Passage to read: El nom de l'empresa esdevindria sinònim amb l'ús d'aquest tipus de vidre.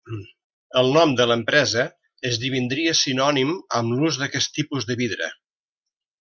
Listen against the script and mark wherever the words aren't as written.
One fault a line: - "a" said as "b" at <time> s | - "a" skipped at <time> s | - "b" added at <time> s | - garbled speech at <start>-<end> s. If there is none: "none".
none